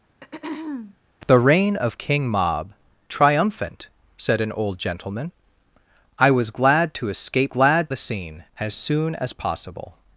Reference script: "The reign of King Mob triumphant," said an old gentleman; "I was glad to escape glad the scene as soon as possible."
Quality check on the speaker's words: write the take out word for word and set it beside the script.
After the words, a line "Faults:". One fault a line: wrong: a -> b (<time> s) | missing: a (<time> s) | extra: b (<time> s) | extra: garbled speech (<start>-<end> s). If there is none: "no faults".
"The reign of King Mob triumphant," said an old gentleman; "I was glad to escape glad the scene as soon as possible."
Faults:
no faults